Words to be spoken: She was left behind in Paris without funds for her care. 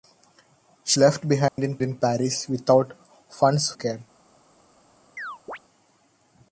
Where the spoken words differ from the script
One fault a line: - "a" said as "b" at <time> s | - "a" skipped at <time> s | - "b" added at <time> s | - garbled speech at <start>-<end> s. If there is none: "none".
- "was" skipped at 1.0 s
- "in" added at 1.8 s
- "for her" skipped at 3.7 s